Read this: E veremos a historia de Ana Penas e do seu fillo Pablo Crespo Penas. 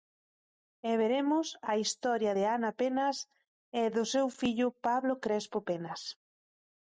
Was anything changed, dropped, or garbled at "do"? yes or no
no